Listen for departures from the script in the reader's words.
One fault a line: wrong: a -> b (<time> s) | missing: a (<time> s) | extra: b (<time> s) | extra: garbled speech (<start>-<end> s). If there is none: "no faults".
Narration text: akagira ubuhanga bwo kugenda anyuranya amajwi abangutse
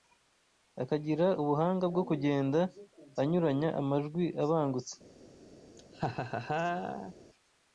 no faults